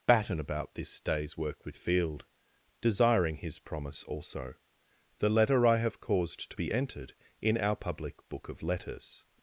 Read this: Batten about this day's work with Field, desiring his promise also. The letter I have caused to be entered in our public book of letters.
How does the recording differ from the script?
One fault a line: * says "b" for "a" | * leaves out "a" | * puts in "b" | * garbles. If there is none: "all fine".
all fine